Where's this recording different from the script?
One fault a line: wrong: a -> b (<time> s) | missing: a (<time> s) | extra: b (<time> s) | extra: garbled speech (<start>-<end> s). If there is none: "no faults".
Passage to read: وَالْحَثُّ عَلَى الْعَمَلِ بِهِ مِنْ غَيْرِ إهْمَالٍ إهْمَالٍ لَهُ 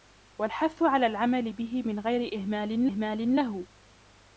no faults